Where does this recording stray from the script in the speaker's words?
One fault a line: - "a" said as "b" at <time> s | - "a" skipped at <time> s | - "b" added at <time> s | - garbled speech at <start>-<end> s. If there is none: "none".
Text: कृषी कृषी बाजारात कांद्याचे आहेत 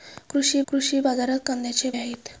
none